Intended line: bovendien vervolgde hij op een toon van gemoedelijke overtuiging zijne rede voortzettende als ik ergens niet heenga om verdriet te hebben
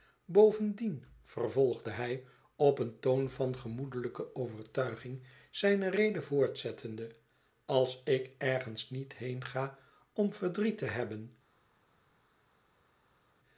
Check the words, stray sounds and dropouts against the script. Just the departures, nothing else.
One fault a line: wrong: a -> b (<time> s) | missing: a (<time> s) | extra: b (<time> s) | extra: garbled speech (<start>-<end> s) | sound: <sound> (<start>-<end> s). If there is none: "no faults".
no faults